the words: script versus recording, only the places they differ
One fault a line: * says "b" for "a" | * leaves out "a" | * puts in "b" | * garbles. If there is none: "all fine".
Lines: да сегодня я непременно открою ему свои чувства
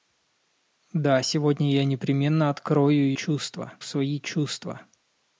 * says "чувства" for "ему"